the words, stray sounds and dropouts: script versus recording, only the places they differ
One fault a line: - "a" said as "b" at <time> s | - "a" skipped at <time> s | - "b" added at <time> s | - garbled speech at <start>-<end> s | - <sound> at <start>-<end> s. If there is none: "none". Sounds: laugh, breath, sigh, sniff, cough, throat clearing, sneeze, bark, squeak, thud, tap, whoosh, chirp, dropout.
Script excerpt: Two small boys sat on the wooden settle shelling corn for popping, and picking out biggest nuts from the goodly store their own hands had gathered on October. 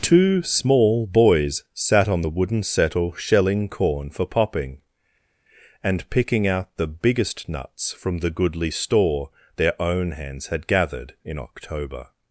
- "the" added at 6.8 s
- "on" said as "in" at 11.2 s